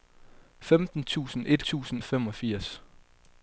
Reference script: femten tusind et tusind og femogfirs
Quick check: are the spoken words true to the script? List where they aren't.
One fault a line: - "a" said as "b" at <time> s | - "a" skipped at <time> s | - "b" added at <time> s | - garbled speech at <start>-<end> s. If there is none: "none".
none